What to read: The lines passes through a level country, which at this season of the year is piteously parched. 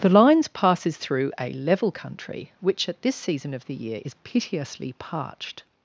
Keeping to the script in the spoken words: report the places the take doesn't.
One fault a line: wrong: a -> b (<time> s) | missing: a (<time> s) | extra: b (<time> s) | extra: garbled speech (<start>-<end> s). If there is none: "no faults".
no faults